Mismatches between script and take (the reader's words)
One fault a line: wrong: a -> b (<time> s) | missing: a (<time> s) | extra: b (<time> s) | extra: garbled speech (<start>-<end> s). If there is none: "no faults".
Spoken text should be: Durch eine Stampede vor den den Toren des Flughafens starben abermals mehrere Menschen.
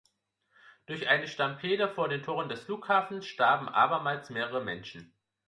missing: den (2.2 s)